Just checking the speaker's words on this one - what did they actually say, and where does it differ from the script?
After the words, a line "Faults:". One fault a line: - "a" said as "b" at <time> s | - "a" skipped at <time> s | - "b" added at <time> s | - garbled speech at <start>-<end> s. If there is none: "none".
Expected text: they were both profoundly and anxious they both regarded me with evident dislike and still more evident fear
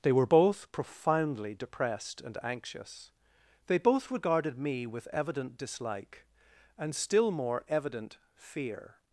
they were both profoundly depressed and anxious they both regarded me with evident dislike and still more evident fear
Faults:
- "depressed" added at 1.5 s